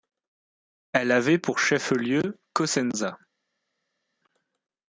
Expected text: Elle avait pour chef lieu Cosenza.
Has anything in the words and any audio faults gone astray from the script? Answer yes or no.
no